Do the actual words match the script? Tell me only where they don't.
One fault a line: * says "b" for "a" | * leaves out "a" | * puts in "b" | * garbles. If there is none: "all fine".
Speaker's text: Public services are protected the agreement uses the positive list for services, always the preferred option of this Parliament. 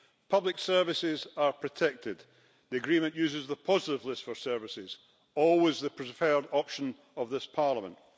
all fine